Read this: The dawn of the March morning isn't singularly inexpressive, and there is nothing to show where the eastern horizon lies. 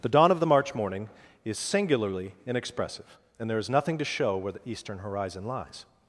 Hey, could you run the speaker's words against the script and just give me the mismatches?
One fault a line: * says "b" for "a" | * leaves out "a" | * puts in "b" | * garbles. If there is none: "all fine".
* says "is" for "isn't"